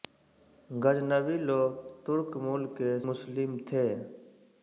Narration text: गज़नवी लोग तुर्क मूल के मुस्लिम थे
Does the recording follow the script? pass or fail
pass